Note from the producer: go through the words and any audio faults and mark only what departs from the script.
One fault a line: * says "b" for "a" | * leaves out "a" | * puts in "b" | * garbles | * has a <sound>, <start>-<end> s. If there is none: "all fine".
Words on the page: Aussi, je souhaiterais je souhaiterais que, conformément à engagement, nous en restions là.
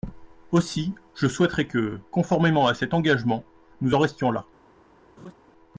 * leaves out "je souhaiterais"
* puts in "cet"
* has a laugh, 5.2-5.3 s